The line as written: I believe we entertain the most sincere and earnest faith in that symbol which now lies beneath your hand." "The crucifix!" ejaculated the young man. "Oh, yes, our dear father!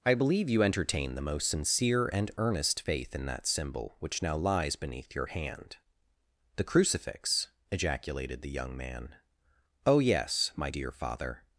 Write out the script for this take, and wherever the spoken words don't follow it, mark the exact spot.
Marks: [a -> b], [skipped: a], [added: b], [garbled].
I believe [we -> you] entertain the most sincere and earnest faith in that symbol which now lies beneath your hand." "The crucifix!" ejaculated the young man. "Oh, yes, [our -> my] dear father!